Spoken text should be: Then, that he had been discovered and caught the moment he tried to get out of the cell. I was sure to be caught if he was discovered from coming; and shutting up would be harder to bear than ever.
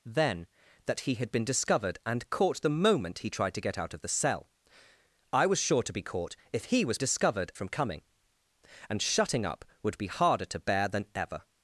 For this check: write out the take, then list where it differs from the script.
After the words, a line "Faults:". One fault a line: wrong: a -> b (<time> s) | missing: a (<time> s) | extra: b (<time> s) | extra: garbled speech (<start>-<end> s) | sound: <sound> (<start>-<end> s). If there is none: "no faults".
Then, that he had been discovered and caught the moment he tried to get out of the cell. I was sure to be caught if he was discovered from coming; and shutting up would be harder to bear than ever.
Faults:
no faults